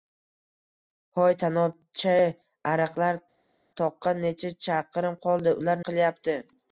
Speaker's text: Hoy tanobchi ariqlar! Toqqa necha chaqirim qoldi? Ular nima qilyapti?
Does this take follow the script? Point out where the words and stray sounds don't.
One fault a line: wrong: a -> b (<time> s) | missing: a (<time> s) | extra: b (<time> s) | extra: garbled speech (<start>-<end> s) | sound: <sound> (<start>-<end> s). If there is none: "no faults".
missing: nima (5.8 s)